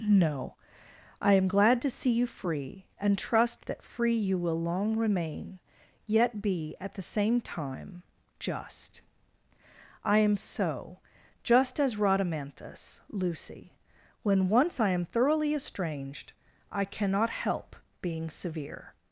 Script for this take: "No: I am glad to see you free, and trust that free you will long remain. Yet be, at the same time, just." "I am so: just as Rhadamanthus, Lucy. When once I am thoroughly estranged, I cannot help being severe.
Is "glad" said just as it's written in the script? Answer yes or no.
yes